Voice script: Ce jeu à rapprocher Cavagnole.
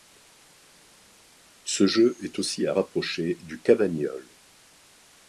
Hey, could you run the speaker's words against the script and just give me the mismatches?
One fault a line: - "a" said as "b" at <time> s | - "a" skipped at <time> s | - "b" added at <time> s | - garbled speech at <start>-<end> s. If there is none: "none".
- "est aussi" added at 2.2 s
- "du" added at 3.4 s